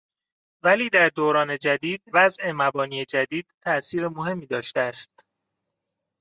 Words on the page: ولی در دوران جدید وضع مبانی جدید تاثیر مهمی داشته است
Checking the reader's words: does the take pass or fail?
pass